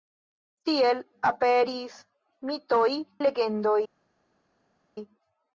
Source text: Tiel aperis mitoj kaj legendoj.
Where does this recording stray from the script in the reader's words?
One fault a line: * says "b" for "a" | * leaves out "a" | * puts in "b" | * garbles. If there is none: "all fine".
* leaves out "kaj"